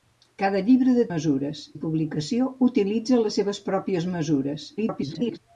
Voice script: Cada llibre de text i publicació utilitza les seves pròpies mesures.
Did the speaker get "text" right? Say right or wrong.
wrong